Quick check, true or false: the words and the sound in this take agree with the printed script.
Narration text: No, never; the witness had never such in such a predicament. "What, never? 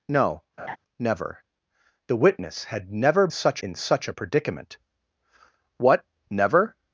false